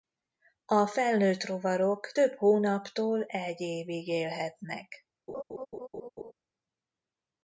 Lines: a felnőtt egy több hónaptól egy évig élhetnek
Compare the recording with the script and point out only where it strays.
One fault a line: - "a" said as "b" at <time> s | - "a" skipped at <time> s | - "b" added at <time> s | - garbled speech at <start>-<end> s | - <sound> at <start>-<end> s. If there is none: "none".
- "egy" said as "rovarok" at 1.4 s
- laugh at 5.3-6.3 s